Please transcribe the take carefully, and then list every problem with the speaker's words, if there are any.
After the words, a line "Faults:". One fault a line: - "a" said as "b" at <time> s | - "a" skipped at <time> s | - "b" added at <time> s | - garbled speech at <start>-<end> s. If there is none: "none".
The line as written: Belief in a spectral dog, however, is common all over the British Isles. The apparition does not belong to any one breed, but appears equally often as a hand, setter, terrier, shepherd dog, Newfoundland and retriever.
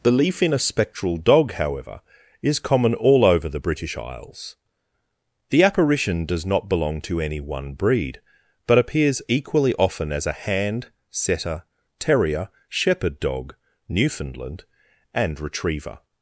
Belief in a spectral dog, however, is common all over the British Isles. The apparition does not belong to any one breed, but appears equally often as a hand, setter, terrier, shepherd dog, Newfoundland and retriever.
Faults:
none